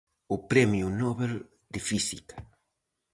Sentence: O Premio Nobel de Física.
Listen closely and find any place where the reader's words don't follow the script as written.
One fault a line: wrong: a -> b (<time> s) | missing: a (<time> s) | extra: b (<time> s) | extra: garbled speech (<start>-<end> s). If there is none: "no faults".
no faults